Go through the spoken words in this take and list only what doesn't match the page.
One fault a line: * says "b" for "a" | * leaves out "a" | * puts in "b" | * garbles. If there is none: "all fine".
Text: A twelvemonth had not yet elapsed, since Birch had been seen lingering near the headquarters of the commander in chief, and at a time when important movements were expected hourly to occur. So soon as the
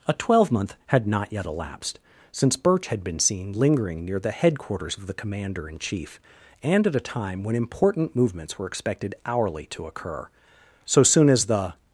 all fine